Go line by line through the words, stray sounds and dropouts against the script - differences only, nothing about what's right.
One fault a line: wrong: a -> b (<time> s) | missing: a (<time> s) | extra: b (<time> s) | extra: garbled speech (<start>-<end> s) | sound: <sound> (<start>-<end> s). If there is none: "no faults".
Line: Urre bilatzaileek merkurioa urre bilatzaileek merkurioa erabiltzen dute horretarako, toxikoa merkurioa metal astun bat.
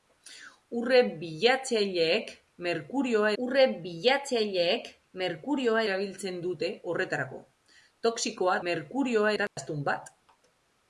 sound: dropout (9.5-9.6 s)